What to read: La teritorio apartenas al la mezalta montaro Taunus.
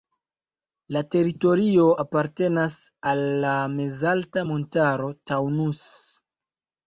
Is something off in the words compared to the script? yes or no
no